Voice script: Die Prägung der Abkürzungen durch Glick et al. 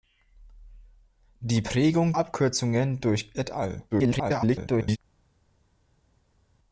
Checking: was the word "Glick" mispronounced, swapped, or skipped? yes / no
yes